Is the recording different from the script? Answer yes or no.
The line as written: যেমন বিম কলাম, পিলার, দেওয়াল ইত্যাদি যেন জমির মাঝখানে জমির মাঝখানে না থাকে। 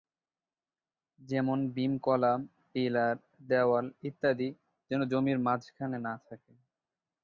yes